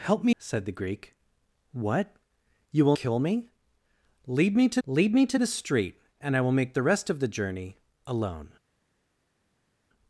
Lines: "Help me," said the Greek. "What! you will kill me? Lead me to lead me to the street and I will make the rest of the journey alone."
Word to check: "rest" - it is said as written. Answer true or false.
true